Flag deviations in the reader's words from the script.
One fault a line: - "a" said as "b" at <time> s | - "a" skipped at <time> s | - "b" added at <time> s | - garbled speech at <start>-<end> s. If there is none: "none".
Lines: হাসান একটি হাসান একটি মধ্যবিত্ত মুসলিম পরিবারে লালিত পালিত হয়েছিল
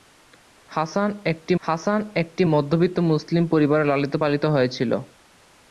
none